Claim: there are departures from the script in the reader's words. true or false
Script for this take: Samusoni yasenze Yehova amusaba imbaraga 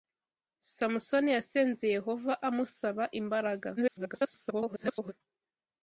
true